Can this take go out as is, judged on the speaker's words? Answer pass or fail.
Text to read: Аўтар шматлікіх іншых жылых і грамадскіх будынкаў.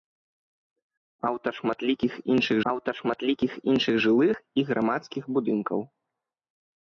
fail